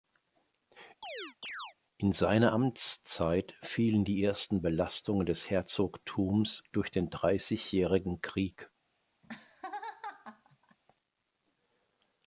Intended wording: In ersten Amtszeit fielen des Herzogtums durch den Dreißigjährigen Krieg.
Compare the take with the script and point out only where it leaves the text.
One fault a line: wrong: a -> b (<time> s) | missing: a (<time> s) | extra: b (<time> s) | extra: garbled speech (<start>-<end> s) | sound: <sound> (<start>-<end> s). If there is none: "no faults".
sound: chirp (1.0-1.7 s)
wrong: ersten -> seine (2.1 s)
extra: die ersten Belastungen (4.0 s)
sound: laugh (9.2-10.8 s)